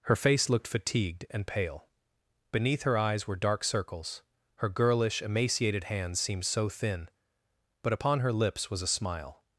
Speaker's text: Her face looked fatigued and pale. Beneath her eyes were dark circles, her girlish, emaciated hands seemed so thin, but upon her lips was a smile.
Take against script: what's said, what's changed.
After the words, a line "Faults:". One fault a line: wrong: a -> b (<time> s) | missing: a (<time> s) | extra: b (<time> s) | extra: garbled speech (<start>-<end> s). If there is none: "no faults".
Her face looked fatigued and pale. Beneath her eyes were dark circles, her girlish, emaciated hands seemed so thin, but upon her lips was a smile.
Faults:
no faults